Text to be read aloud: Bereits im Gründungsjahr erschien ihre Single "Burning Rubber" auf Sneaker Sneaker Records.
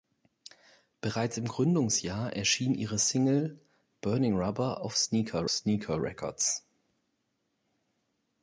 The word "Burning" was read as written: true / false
true